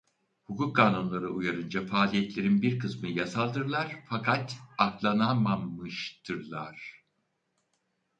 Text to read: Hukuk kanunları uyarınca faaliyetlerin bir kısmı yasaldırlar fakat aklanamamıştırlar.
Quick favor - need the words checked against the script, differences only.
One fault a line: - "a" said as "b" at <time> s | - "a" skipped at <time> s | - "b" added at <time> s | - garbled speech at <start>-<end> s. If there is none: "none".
none